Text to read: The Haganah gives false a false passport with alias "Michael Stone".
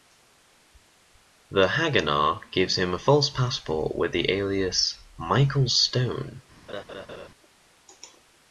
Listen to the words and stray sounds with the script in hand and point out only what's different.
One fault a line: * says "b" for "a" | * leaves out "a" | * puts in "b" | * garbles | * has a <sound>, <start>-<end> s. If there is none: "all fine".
* says "him" for "false"
* puts in "the"
* has a laugh, 6.7-7.3 s